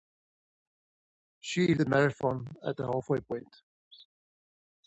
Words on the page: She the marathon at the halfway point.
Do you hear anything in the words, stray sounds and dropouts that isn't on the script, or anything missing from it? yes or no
no